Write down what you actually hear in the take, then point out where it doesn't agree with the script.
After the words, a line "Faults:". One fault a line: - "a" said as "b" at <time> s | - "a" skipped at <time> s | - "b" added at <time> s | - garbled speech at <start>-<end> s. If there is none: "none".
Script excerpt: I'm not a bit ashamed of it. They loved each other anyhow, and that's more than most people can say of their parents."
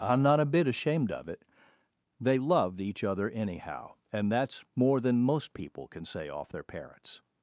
I'm not a bit ashamed of it. They loved each other anyhow, and that's more than most people can say off their parents."
Faults:
- "of" said as "off" at 6.3 s